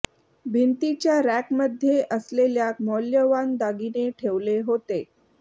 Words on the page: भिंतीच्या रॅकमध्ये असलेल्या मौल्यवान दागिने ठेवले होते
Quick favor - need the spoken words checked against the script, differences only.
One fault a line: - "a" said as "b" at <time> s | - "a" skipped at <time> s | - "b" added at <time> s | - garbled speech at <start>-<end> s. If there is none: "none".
none